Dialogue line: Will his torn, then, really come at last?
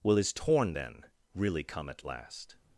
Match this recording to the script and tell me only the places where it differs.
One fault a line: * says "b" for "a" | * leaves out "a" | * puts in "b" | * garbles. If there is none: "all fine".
all fine